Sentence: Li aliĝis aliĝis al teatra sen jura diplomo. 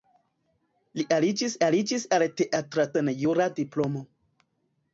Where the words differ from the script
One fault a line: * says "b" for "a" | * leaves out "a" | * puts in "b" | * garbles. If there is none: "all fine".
all fine